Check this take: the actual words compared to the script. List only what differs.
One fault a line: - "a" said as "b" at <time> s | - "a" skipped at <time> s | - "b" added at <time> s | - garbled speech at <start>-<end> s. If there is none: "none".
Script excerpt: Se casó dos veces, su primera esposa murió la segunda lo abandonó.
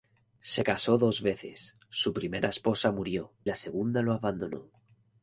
none